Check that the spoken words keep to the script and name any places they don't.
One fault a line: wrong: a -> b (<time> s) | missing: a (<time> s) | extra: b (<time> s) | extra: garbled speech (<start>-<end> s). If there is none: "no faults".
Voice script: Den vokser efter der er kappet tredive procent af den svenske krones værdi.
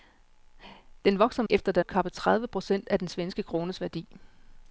no faults